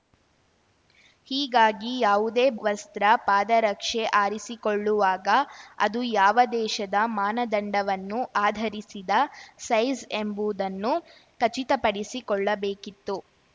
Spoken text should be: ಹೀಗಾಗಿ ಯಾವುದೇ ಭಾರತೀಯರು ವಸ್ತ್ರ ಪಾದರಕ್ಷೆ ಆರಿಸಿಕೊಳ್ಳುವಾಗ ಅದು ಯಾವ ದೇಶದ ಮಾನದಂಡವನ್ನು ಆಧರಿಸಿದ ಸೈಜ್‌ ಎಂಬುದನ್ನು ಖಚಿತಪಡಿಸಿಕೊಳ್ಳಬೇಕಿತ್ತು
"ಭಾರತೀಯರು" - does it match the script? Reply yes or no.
no